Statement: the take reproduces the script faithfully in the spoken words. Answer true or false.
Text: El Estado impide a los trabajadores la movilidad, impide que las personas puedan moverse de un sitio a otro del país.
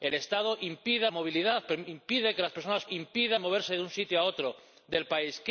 false